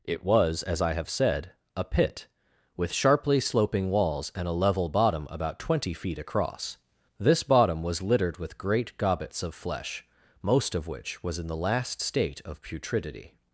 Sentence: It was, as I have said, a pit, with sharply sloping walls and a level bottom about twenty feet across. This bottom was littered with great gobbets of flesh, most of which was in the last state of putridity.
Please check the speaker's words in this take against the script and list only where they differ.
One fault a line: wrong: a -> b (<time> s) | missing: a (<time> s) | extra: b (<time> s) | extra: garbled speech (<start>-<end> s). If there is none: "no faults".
no faults